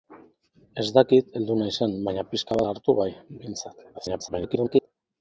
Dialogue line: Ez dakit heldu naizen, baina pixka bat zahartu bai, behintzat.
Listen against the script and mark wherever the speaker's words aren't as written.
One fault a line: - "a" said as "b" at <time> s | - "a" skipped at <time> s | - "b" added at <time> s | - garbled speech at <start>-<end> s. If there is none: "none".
- "bat" skipped at 2.6 s
- garbled speech at 3.9-4.9 s